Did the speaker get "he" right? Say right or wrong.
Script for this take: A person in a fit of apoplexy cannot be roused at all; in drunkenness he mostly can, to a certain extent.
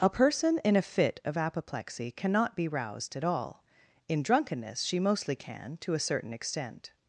wrong